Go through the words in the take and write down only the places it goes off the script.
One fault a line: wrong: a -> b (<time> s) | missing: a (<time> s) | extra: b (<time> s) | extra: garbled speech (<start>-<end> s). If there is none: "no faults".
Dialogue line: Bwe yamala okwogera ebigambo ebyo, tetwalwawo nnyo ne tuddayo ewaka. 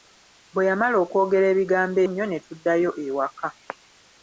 missing: ebyo tetwalwawo (2.0 s)